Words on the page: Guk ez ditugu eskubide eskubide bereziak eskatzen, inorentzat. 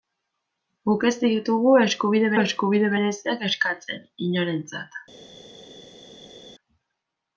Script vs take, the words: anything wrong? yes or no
no